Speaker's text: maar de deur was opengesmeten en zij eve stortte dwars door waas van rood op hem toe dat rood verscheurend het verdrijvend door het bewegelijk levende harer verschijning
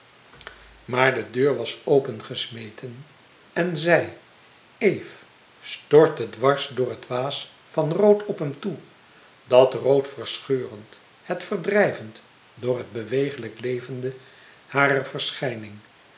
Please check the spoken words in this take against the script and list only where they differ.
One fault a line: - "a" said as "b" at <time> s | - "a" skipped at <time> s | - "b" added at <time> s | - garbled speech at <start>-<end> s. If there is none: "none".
- "het" added at 6.9 s